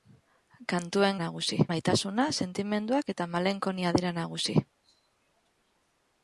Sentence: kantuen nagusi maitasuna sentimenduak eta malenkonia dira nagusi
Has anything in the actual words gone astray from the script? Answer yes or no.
no